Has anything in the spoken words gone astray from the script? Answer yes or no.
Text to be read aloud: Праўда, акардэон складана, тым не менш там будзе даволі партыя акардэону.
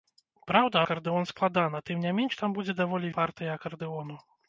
no